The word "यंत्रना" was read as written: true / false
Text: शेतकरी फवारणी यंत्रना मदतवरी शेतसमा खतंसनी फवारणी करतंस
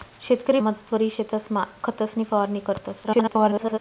false